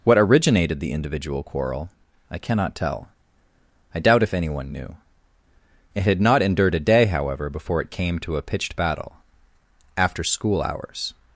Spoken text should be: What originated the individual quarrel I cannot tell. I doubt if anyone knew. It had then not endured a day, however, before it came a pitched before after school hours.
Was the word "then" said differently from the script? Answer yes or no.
yes